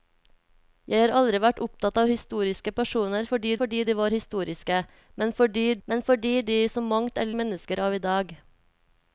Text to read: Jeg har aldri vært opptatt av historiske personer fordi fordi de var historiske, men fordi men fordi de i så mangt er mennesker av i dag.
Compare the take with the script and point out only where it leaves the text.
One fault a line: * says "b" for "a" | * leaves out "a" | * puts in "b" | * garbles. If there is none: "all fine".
all fine